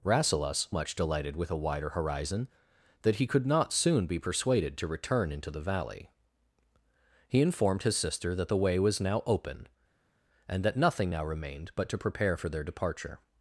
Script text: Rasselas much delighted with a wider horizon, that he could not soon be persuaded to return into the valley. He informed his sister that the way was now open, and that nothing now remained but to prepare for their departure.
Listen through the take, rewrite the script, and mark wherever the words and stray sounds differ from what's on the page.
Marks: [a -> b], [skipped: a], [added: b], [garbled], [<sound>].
Rasselas much delighted with a wider horizon, that he could not soon be persuaded to return into the valley. He informed his sister that the way was now open, and that nothing now remained but to prepare for their departure.